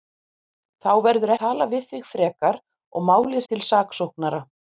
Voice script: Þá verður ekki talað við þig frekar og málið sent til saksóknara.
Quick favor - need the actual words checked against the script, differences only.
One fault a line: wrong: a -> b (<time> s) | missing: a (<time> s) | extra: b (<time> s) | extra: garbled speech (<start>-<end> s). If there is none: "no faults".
missing: ekki (1.3 s)
missing: sent (3.4 s)